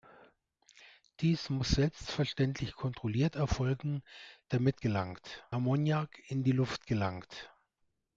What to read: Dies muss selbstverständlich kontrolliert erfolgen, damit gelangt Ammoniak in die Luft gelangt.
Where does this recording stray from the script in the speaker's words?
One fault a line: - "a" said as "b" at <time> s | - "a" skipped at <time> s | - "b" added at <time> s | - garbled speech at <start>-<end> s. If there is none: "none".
none